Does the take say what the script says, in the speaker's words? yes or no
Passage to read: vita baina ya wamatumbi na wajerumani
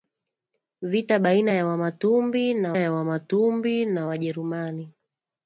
no